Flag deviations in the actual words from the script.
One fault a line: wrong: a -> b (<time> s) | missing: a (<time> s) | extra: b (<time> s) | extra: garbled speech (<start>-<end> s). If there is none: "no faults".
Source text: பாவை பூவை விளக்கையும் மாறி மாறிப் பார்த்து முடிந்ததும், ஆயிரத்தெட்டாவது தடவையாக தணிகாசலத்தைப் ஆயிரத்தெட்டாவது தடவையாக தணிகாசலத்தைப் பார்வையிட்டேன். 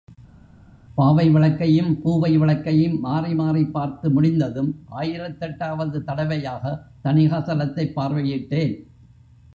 extra: விளக்கையும் (1.3 s)
missing: ஆயிரத்தெட்டாவது தடவையாக தணிகாசலத்தைப் (7.9 s)